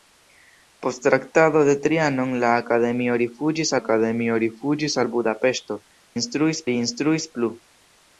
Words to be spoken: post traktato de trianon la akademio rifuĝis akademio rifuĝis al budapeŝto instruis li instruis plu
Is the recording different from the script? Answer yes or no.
no